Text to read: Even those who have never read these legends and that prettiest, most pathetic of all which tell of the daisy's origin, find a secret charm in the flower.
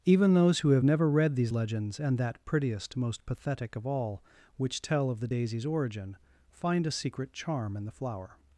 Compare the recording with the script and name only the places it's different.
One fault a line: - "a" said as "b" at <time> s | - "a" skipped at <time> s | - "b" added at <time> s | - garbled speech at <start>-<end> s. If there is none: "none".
none